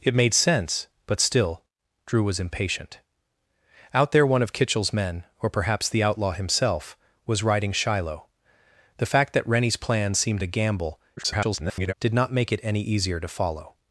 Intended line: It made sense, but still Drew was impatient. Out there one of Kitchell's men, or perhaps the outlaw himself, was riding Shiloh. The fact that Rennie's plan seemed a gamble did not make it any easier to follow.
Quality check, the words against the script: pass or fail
fail